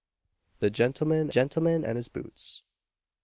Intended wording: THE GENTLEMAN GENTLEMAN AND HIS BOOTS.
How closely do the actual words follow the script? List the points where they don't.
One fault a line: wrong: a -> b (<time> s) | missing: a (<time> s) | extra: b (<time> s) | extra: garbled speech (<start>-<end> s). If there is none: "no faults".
no faults